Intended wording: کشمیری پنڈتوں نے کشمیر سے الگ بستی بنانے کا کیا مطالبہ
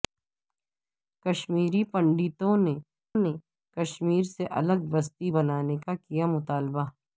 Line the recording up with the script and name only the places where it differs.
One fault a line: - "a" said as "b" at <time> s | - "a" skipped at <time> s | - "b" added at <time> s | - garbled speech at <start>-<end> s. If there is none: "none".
- "نے" added at 3.2 s